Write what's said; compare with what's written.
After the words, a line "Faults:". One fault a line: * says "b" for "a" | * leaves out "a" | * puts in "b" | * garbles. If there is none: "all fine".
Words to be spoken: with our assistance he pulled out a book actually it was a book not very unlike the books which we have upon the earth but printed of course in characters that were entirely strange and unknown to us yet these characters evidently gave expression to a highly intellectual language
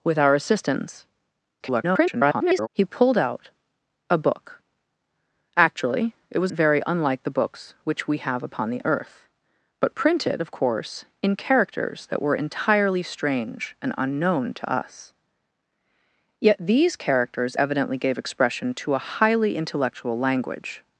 with our assistance [garbled] he pulled out a book actually it was very unlike the books which we have upon the earth but printed of course in characters that were entirely strange and unknown to us yet these characters evidently gave expression to a highly intellectual language
Faults:
* garbles
* leaves out "a book not"